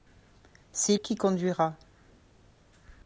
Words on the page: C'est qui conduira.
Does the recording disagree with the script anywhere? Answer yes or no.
no